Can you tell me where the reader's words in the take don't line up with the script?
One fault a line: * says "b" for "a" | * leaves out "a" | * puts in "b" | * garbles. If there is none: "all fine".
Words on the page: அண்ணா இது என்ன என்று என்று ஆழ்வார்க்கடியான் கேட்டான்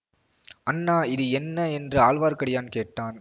* leaves out "என்று"